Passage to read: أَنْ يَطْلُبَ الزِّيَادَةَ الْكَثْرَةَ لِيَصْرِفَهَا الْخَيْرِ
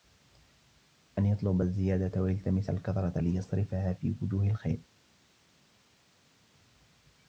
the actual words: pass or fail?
fail